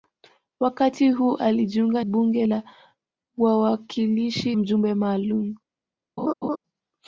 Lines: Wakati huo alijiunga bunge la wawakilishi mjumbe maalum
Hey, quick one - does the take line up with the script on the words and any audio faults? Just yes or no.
no